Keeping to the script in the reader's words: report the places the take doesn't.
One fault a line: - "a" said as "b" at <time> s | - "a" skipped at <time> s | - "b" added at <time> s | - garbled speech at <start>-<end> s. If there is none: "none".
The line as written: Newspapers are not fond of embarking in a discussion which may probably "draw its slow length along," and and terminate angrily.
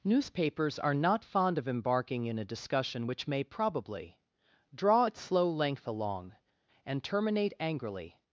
- "and" skipped at 7.0 s